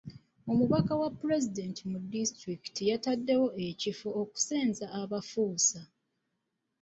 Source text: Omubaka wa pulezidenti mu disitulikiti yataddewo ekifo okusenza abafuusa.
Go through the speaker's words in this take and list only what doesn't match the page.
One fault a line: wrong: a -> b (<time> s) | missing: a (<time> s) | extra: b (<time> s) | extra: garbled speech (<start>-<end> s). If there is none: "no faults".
no faults